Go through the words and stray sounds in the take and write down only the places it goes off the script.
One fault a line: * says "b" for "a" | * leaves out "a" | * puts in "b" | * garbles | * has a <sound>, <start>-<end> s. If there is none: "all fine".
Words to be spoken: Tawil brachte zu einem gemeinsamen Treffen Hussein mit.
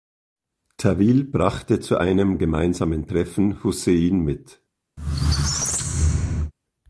* has a squeak, 5.0-6.5 s